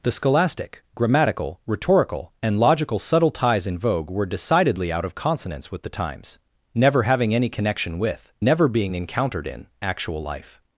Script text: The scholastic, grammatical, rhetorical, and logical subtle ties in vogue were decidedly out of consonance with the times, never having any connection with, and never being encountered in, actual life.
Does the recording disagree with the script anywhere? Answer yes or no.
yes